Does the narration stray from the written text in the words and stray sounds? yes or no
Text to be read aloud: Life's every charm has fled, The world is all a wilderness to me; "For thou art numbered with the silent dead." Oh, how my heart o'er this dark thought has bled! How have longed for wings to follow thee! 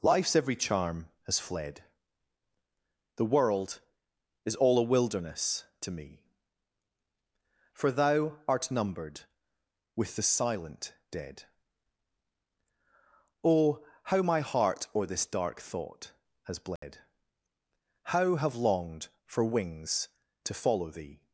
yes